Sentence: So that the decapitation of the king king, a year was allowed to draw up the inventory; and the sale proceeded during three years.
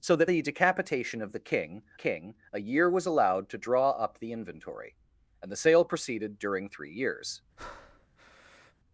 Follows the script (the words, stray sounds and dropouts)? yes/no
no